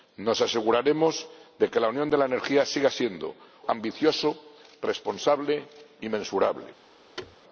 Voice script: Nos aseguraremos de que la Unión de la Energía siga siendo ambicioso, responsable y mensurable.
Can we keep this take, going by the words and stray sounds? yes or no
no